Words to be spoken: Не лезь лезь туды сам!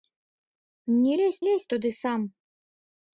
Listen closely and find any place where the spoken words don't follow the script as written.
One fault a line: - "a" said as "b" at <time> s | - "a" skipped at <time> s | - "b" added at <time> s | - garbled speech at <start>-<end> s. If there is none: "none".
none